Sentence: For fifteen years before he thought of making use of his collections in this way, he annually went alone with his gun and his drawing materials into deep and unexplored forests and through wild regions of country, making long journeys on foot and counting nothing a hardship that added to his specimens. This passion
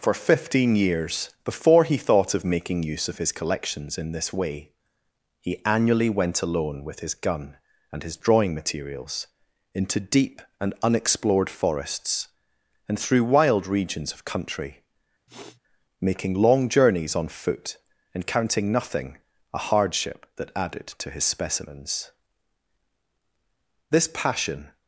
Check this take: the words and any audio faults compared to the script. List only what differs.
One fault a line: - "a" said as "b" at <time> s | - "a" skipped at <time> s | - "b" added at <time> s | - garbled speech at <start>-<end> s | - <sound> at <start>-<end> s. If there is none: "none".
- sniff at 15.3-15.6 s